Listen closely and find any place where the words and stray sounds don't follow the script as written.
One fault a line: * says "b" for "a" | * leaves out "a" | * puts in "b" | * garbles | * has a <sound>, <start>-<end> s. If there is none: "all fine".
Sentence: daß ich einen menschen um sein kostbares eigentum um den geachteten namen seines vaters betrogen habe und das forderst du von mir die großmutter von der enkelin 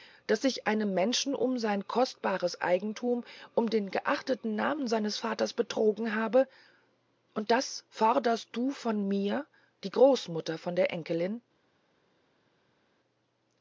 all fine